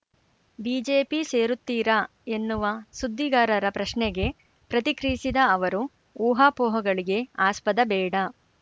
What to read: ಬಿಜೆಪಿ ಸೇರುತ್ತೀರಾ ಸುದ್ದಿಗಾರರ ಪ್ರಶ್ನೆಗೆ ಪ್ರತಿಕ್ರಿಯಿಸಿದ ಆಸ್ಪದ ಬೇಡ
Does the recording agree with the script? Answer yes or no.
no